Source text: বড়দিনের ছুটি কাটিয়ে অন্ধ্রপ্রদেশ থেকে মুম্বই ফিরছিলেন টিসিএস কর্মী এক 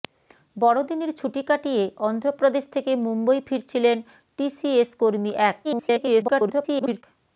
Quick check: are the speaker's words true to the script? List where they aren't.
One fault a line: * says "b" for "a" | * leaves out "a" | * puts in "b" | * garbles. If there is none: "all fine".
* garbles